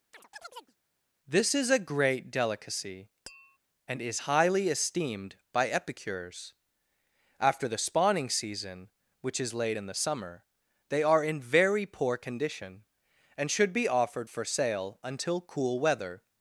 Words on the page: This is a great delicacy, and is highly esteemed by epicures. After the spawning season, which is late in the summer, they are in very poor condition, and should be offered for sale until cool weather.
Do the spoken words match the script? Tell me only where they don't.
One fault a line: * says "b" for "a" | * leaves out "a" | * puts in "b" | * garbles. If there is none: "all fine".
all fine